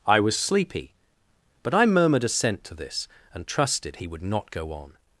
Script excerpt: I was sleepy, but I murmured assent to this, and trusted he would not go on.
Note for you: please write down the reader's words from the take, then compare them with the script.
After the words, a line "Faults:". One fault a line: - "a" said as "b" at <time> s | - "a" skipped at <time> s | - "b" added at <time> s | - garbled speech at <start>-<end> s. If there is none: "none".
I was sleepy, but I murmured assent to this, and trusted he would not go on.
Faults:
none